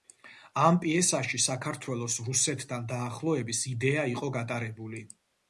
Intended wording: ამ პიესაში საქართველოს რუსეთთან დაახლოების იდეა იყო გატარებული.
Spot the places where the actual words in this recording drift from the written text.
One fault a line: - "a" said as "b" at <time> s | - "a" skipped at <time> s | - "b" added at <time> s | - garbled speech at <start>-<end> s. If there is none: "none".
none